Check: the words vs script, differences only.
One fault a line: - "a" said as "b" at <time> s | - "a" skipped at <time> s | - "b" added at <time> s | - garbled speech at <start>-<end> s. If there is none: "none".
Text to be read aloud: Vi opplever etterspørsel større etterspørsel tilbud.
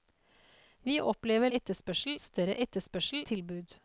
none